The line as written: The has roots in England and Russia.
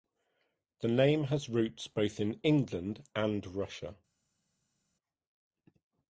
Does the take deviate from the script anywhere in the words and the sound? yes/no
yes